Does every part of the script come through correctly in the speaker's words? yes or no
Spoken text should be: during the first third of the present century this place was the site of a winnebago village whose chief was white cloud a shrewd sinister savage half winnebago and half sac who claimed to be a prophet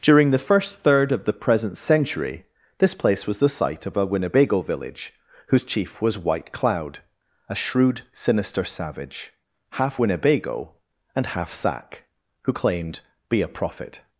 no